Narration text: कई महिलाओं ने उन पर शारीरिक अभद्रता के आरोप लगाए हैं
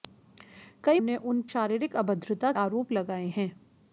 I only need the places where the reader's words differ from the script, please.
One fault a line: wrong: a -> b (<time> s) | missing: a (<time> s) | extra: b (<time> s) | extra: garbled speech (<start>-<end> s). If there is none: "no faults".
missing: महिलाओं (1.0 s)
missing: पर (1.4 s)
missing: के (2.5 s)